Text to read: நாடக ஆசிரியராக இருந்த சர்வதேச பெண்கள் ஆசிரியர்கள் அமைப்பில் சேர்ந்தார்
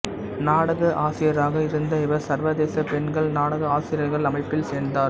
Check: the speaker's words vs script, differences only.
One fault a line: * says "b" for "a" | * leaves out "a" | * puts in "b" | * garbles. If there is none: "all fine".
* puts in "இவர்"
* puts in "நாடக"